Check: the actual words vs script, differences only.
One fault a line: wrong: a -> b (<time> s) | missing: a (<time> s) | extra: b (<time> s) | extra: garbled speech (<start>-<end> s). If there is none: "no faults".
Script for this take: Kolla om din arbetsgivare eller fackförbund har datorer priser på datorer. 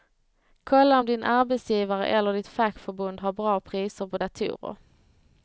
extra: ditt (2.3 s)
wrong: datorer -> bra (3.3 s)